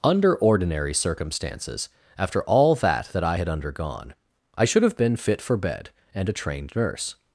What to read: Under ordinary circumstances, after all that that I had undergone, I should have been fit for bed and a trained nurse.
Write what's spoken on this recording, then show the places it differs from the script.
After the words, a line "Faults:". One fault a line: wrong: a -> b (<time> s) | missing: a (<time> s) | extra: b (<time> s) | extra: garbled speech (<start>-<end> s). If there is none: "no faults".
Under ordinary circumstances, after all that that I had undergone, I should have been fit for bed and a trained nurse.
Faults:
no faults